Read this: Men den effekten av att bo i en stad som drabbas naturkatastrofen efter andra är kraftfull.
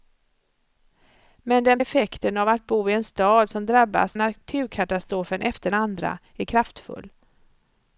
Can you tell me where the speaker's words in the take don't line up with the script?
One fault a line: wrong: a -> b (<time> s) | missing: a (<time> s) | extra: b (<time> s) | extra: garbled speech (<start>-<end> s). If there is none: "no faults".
no faults